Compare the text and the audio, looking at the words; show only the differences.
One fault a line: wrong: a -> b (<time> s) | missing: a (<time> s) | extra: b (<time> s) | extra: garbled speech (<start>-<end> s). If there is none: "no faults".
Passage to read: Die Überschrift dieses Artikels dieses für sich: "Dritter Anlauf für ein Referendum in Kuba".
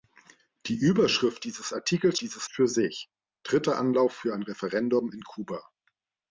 no faults